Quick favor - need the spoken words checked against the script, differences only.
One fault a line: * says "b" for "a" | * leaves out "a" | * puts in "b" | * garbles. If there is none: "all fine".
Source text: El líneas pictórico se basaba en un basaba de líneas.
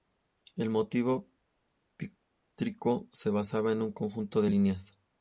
* says "motivo" for "líneas"
* says "conjunto" for "basaba"